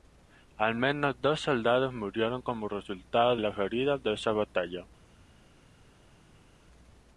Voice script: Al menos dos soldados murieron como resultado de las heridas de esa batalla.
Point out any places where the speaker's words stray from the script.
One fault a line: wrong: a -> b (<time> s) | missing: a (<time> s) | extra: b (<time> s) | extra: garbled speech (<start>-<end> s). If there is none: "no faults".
missing: de (3.4 s)